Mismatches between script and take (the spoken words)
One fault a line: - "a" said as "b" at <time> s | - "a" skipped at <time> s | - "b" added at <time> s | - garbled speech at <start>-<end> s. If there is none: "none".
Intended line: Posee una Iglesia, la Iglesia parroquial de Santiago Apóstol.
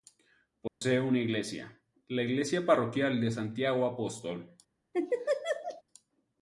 none